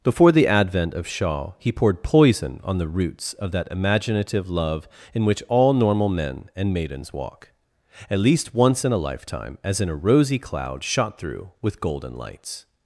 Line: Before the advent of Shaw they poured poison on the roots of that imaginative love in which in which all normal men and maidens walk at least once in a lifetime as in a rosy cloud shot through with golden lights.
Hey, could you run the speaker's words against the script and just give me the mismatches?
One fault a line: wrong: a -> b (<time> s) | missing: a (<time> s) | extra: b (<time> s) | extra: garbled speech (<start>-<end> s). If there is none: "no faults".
wrong: they -> he (1.6 s)
missing: in which (5.4 s)